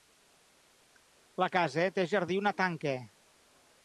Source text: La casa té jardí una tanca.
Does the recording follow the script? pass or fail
pass